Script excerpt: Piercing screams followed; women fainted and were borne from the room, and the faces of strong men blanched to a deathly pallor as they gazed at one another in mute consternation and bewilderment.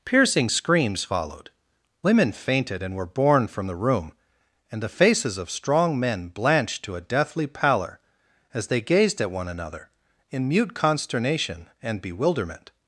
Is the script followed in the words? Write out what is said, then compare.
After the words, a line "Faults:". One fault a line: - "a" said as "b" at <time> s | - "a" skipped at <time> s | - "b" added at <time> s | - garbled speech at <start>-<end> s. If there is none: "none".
Piercing screams followed; women fainted and were borne from the room, and the faces of strong men blanched to a deathly pallor as they gazed at one another in mute consternation and bewilderment.
Faults:
none